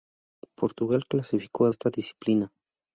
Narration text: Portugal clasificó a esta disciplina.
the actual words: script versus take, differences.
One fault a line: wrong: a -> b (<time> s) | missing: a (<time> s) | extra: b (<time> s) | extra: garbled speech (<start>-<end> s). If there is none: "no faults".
no faults